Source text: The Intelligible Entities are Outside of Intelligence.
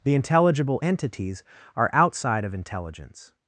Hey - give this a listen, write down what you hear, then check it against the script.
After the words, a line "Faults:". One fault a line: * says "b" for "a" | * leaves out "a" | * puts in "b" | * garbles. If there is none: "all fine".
The Intelligible Entities are Outside of Intelligence.
Faults:
all fine